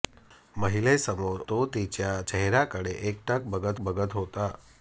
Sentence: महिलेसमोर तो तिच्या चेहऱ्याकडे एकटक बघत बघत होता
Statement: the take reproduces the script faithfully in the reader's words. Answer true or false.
true